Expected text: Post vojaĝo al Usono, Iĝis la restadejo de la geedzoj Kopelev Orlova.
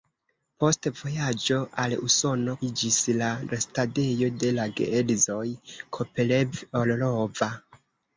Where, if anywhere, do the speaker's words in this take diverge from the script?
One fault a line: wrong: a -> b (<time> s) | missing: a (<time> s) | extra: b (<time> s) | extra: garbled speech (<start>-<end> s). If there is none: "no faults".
no faults